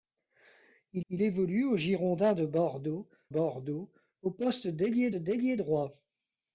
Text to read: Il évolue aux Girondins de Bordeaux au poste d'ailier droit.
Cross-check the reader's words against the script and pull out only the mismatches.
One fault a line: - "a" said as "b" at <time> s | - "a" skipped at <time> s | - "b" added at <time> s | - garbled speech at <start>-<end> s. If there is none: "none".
- "il" added at 1.1 s
- "Bordeaux" added at 3.3 s
- "d'ailier" added at 5.1 s